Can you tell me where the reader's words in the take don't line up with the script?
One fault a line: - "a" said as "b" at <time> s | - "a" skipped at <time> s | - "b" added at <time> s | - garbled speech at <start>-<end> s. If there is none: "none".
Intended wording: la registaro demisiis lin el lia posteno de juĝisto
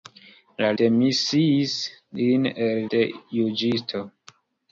- "registaro" skipped at 0.7 s
- "lia posteno" skipped at 2.8 s